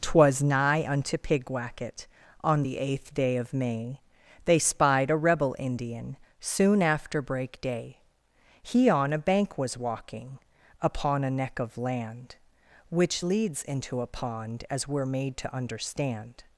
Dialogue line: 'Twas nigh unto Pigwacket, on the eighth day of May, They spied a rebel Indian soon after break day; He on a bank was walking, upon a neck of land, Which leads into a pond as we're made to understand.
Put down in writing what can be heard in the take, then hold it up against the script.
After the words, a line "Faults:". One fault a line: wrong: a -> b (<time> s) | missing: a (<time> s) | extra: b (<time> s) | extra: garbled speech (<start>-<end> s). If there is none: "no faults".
'Twas nigh unto Pigwacket, on the eighth day of May, They spied a rebel Indian soon after break day; He on a bank was walking, upon a neck of land, Which leads into a pond as we're made to understand.
Faults:
no faults